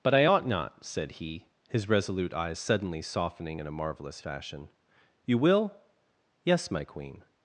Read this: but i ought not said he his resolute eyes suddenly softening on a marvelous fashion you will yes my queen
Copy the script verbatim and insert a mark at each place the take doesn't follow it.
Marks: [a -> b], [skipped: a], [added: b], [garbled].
but i ought not said he his resolute eyes suddenly softening [on -> in] a marvelous fashion you will yes my queen